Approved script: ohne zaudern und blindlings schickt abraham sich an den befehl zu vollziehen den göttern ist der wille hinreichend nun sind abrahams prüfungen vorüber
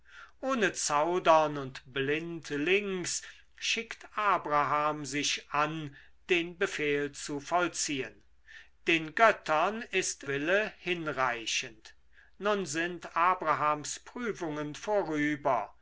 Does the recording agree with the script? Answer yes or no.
no